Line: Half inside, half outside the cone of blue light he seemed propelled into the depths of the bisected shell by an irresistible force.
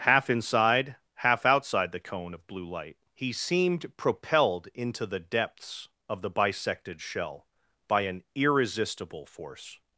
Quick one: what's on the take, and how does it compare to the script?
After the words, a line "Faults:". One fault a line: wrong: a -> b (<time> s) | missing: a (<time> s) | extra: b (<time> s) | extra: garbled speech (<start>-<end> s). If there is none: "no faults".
Half inside, half outside the cone of blue light he seemed propelled into the depths of the bisected shell by an irresistible force.
Faults:
no faults